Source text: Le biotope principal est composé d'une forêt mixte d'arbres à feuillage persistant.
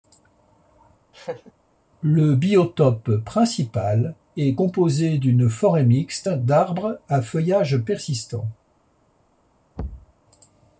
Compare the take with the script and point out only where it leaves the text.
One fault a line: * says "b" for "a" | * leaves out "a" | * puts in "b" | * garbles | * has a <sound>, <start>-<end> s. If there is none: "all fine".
* has a laugh, 1.1-1.5 s
* has a thud, 9.8-10.1 s